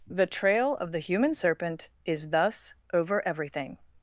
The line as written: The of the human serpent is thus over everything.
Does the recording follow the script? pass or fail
fail